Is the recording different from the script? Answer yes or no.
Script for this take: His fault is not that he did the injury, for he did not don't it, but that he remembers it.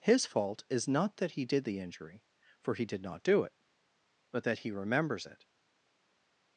yes